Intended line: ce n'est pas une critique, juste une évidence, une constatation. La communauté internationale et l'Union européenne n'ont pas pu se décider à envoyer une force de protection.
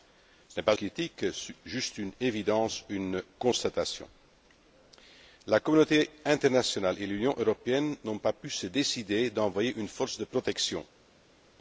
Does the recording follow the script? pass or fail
fail